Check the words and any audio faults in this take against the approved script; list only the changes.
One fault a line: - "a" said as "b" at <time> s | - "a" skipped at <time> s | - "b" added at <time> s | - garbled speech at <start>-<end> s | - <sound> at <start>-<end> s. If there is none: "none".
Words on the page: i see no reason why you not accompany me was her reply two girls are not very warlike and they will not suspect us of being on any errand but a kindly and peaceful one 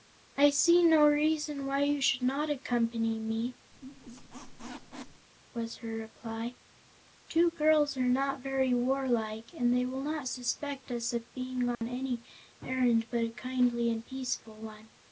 - "should" added at 2.0 s
- squeak at 3.7-5.3 s
- dropout at 11.8-11.8 s